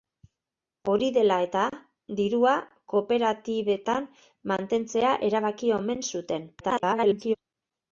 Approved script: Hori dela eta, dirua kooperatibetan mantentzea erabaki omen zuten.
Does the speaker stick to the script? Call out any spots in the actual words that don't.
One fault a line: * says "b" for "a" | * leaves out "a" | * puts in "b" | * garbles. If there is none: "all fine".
* garbles